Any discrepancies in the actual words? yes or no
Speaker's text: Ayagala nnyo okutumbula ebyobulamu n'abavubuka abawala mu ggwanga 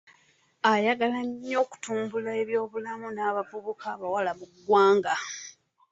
no